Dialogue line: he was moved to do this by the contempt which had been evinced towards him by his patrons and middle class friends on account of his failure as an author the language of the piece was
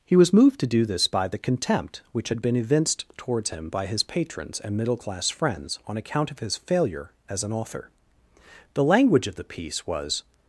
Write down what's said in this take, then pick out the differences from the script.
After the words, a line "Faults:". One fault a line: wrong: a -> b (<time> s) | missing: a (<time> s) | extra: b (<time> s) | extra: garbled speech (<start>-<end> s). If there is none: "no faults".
he was moved to do this by the contempt which had been evinced towards him by his patrons and middle class friends on account of his failure as an author the language of the piece was
Faults:
no faults